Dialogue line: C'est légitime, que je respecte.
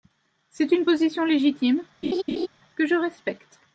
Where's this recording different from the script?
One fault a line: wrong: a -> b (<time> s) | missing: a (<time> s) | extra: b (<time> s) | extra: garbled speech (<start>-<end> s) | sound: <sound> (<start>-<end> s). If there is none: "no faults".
extra: une position (0.7 s)
sound: laugh (2.0-2.5 s)